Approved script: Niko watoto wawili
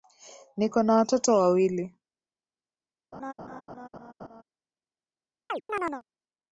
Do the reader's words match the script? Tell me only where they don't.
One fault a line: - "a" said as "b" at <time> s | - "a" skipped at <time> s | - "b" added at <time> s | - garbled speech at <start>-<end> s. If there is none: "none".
- "na" added at 0.8 s